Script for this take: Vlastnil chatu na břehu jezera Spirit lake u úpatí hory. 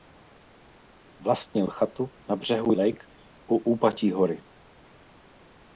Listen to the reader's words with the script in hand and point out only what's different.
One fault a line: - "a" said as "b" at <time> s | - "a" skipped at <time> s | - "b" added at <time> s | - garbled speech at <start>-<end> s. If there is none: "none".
- "jezera Spirit" skipped at 2.7 s